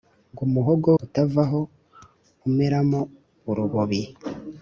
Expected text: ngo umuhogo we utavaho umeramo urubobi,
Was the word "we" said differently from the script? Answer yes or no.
yes